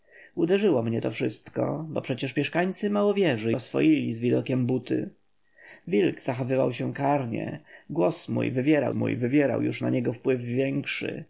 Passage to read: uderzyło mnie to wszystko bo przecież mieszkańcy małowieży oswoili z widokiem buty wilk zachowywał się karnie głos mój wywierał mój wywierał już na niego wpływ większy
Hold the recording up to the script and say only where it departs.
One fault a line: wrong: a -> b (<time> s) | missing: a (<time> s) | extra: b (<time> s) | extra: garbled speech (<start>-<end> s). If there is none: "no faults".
no faults